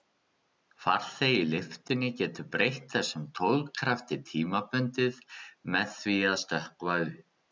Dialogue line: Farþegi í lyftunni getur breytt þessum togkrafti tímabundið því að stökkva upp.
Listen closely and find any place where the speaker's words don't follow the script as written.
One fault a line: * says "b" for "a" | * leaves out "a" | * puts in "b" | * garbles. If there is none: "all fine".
* puts in "með"